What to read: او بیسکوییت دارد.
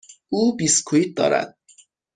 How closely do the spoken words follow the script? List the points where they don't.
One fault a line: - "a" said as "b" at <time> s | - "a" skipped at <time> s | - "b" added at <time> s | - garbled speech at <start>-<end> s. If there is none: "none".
none